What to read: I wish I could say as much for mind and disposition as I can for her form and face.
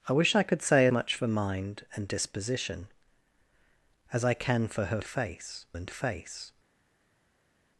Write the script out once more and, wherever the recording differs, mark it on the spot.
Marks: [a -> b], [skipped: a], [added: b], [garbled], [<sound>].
I wish I could say [skipped: as] much for mind and disposition as I can for her [form -> face] and face.